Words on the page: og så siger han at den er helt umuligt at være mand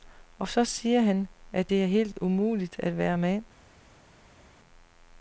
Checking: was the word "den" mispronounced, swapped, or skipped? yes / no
yes